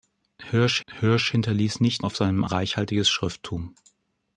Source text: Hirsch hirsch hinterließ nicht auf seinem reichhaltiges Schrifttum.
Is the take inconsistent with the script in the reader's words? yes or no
no